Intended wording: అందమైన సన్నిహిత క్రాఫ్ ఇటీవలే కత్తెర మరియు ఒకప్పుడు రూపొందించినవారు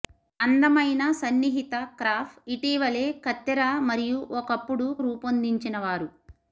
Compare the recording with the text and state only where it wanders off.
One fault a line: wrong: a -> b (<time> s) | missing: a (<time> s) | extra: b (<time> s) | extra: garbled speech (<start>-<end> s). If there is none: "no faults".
no faults